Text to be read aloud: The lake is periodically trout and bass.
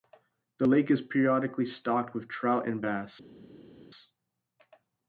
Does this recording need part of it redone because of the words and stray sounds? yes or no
yes